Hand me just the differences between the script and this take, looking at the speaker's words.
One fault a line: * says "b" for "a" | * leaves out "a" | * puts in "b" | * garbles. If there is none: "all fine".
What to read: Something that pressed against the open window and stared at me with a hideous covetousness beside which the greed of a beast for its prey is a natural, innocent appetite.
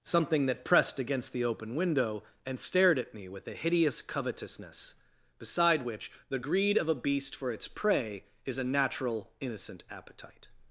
all fine